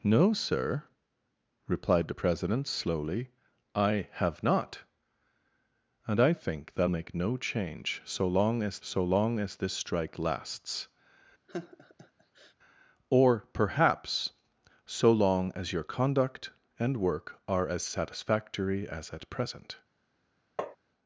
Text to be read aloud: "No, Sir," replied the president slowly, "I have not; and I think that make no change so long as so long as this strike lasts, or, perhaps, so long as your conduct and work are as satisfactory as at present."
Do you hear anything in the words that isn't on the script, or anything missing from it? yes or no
no